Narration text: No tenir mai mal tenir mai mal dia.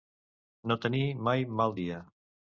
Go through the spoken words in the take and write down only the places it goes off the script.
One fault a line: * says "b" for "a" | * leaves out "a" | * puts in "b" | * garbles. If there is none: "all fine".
* leaves out "tenir mai mal"